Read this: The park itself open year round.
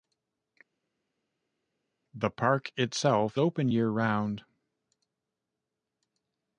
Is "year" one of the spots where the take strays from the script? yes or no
no